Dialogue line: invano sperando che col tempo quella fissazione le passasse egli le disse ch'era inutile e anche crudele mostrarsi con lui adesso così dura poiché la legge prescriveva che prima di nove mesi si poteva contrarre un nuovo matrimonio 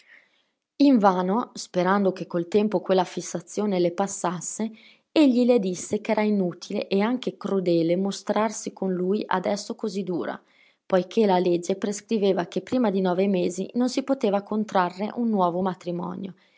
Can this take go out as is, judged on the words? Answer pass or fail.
fail